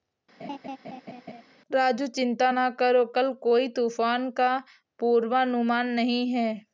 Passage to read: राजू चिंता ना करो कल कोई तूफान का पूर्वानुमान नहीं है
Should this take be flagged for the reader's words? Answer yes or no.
no